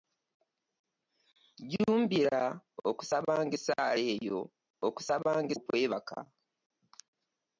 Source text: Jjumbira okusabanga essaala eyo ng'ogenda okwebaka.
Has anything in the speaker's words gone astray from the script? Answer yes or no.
yes